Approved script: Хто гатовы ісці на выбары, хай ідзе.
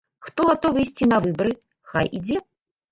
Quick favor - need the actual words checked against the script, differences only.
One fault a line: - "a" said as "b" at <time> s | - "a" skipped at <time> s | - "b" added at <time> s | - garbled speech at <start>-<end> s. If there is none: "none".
none